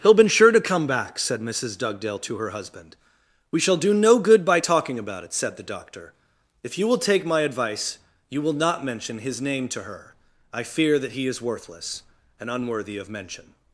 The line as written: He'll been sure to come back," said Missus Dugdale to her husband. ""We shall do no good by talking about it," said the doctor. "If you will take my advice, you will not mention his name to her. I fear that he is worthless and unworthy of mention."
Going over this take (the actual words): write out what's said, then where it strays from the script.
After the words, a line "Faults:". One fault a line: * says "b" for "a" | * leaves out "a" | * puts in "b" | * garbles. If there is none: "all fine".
He'll been sure to come back," said Missus Dugdale to her husband. ""We shall do no good by talking about it," said the doctor. "If you will take my advice, you will not mention his name to her. I fear that he is worthless and unworthy of mention."
Faults:
all fine